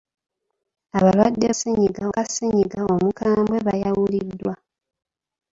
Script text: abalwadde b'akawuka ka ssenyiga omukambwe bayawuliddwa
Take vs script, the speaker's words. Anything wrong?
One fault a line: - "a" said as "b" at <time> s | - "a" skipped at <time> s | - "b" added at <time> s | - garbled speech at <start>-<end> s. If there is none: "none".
- "b'akawuka" said as "ssenyiga" at 1.5 s